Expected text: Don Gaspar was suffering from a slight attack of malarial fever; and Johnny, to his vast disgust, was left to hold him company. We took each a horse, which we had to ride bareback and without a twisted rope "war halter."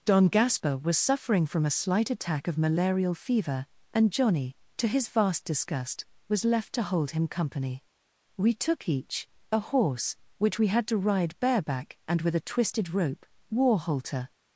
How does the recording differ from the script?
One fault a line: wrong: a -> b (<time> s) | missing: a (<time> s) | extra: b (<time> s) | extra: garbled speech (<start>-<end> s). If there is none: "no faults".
wrong: without -> with (12.2 s)